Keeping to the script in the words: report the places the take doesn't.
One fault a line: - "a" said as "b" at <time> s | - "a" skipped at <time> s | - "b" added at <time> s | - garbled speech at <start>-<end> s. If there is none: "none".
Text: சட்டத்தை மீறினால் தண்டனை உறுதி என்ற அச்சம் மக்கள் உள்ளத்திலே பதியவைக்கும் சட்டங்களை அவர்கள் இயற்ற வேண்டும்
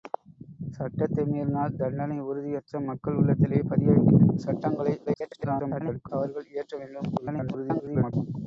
- "என்ற" skipped at 2.5 s
- garbled speech at 5.1-6.1 s
- garbled speech at 7.2-8.1 s